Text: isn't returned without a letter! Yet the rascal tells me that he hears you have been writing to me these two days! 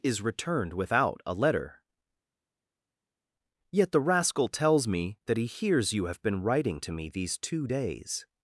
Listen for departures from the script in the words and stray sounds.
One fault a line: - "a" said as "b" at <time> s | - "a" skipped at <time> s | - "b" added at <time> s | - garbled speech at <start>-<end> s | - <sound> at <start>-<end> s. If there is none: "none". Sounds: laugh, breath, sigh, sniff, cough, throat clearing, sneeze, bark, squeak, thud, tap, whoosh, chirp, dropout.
- "isn't" said as "is" at 0.0 s